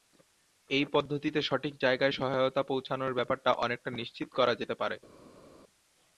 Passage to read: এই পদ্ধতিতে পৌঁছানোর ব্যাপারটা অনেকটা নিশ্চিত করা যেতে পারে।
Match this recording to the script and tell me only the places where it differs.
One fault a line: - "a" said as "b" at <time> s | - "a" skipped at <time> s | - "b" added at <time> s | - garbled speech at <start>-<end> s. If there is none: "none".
- "সঠিক জায়গায় সহায়তা" added at 1.4 s